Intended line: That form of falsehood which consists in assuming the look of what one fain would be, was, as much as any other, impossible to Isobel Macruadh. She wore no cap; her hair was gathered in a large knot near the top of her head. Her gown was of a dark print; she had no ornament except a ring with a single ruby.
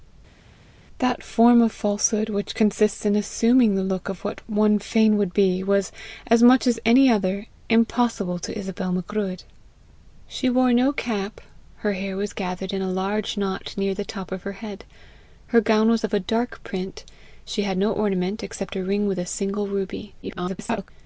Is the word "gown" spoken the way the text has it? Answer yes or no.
yes